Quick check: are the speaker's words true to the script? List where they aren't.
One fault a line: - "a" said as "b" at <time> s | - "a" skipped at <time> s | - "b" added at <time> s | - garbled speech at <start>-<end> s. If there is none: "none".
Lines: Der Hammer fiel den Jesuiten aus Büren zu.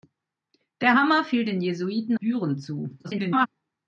- "aus" skipped at 2.2 s
- garbled speech at 3.0-3.5 s